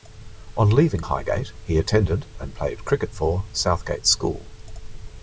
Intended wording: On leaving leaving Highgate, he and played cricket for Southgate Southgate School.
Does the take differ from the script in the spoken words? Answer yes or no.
yes